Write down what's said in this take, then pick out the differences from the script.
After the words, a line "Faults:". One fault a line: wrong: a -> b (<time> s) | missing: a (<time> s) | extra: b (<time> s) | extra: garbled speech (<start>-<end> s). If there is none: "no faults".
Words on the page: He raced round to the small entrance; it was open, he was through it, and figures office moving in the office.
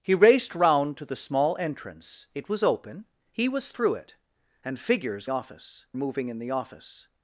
He raced round to the small entrance; it was open, he was through it, and figures office moving in the office.
Faults:
no faults